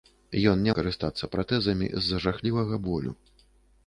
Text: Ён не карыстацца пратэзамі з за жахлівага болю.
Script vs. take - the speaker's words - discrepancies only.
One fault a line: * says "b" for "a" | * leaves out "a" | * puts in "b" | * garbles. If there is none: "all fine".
all fine